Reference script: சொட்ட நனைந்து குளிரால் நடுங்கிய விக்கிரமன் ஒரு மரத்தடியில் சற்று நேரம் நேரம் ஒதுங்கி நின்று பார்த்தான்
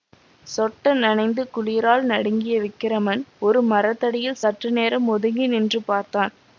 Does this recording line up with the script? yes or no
no